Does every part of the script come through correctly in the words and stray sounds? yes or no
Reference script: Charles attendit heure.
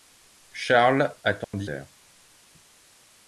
no